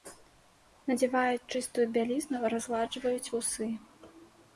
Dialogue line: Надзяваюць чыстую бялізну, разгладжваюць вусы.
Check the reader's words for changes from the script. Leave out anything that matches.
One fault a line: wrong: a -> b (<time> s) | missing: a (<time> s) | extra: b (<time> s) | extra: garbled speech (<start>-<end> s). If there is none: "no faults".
no faults